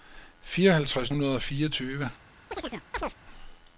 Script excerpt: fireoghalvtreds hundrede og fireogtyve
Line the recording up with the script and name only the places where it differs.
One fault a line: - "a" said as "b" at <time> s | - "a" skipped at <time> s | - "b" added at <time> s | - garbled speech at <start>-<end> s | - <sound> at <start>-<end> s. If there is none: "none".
- chirp at 2.5-3.1 s